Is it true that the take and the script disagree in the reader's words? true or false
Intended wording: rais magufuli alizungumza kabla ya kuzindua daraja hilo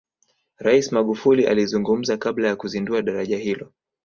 false